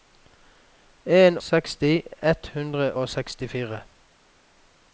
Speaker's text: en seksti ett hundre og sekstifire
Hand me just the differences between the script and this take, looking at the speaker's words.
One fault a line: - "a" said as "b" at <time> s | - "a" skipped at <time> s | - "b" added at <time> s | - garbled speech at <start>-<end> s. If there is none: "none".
none